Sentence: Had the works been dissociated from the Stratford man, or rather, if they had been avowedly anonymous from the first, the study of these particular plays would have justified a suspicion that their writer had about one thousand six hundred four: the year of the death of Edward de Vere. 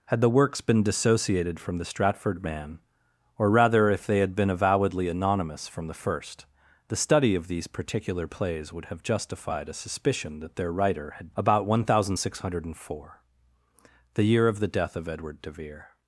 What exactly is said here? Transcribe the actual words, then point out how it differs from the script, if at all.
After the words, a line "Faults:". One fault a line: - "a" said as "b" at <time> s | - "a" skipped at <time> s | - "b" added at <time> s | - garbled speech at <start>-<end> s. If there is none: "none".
Had the works been dissociated from the Stratford man, or rather, if they had been avowedly anonymous from the first, the study of these particular plays would have justified a suspicion that their writer had about one thousand six hundred four: the year of the death of Edward de Vere.
Faults:
none